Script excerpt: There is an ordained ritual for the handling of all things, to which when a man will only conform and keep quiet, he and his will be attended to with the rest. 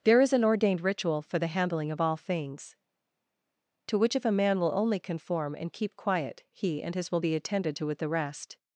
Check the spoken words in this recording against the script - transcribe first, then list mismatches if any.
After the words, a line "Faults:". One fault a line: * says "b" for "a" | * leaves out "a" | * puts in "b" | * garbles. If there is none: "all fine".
There is an ordained ritual for the handling of all things, to which if a man will only conform and keep quiet, he and his will be attended to with the rest.
Faults:
* says "if" for "when"